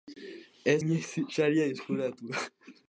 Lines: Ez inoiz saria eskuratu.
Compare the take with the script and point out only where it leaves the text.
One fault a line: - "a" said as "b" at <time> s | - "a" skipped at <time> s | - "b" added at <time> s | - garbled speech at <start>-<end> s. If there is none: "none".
none